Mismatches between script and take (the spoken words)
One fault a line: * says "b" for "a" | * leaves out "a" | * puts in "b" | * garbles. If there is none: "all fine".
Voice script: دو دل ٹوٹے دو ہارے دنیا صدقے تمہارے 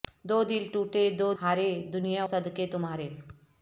all fine